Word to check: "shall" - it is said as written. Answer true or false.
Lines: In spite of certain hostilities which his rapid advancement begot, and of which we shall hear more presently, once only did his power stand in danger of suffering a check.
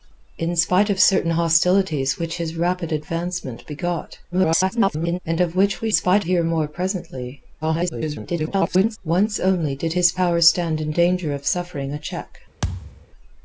false